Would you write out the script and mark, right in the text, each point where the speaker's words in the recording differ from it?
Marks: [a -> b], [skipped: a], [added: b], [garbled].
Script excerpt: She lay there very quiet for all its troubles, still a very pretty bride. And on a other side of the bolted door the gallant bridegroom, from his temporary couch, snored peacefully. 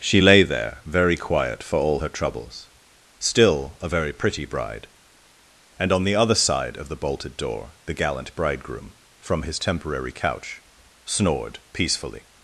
She lay there very quiet for all [its -> her] troubles, still a very pretty bride. And on [a -> the] other side of the bolted door the gallant bridegroom, from his temporary couch, snored peacefully.